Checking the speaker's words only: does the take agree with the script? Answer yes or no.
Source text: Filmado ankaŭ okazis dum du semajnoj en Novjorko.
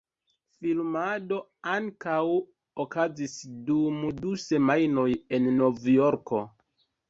yes